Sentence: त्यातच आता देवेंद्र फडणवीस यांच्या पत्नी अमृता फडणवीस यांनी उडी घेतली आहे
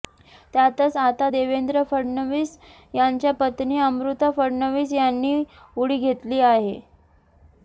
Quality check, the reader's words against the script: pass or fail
pass